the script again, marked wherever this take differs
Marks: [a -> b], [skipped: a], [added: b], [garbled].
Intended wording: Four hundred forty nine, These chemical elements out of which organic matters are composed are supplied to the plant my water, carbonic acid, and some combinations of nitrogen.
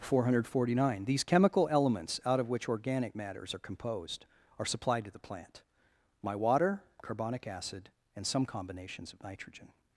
Four hundred forty nine, These chemical elements out of which organic matters are composed are supplied to the plant my water, carbonic acid, and some combinations of nitrogen.